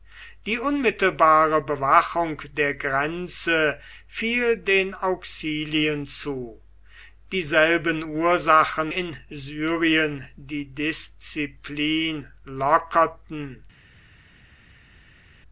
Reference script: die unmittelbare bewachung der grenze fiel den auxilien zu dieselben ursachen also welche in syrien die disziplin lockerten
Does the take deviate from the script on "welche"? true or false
true